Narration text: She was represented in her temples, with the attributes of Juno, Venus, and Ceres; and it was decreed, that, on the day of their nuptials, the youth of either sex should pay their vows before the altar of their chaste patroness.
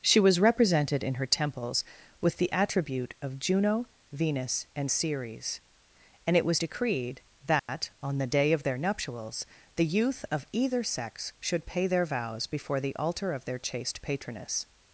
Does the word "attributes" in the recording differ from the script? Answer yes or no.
yes